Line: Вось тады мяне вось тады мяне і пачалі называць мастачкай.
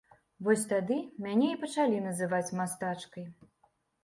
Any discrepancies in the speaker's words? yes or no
yes